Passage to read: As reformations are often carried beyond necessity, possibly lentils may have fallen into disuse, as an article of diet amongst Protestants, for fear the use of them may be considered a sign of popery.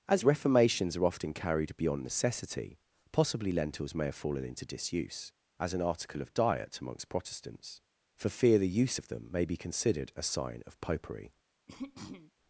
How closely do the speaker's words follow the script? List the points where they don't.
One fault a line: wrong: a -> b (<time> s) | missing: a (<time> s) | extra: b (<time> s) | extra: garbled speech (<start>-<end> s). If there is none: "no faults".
no faults